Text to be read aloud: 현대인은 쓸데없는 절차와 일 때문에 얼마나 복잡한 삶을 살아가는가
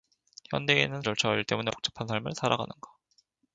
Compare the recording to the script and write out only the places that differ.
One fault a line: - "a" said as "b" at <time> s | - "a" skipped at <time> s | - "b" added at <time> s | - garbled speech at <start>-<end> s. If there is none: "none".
- "쓸데없는" skipped at 1.0 s
- "얼마나" skipped at 1.7 s